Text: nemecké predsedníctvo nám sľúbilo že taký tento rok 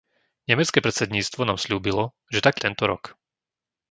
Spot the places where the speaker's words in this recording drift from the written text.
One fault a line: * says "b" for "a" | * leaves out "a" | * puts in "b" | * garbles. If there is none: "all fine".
all fine